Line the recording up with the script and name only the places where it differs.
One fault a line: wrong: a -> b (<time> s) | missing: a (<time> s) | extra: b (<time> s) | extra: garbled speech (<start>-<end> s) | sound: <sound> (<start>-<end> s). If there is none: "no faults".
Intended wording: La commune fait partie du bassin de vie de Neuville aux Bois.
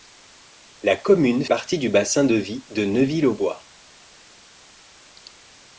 missing: fait (1.4 s)